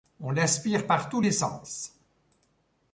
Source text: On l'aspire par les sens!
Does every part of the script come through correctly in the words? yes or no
no